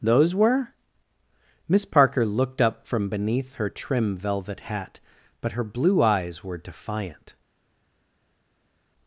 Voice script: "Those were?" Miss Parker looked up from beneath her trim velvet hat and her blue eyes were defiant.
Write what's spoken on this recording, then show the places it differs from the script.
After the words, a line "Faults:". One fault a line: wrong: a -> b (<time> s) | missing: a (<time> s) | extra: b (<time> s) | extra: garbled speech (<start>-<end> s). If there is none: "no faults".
"Those were?" Miss Parker looked up from beneath her trim velvet hat but her blue eyes were defiant.
Faults:
wrong: and -> but (5.4 s)